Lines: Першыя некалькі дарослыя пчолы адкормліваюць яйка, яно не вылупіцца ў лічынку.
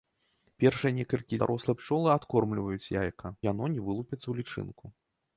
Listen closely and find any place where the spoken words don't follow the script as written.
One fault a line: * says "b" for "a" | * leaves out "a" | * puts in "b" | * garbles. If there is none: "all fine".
all fine